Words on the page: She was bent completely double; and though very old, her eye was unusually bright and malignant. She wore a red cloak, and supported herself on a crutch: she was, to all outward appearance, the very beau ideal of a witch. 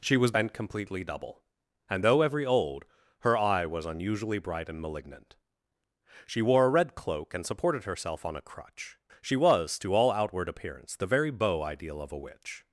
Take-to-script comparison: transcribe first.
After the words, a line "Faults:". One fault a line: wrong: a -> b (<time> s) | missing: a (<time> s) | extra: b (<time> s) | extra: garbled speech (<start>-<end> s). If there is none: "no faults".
She was bent completely double; and though every old, her eye was unusually bright and malignant. She wore a red cloak, and supported herself on a crutch: she was, to all outward appearance, the very beau ideal of a witch.
Faults:
wrong: very -> every (2.2 s)